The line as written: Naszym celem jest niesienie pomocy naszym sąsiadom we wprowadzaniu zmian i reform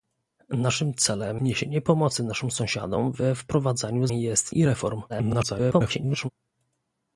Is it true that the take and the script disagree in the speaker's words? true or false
true